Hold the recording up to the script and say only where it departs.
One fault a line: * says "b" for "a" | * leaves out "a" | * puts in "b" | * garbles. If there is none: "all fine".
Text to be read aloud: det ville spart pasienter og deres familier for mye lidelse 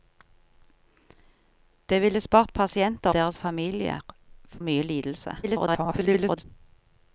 * leaves out "og"
* leaves out "for"
* garbles